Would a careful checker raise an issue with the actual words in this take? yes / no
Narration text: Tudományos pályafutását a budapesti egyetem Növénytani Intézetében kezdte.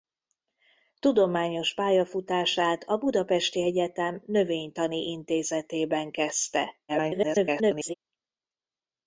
yes